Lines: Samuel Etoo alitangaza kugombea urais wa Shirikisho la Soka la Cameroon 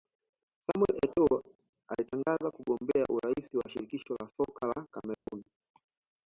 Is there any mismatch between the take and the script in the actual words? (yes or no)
no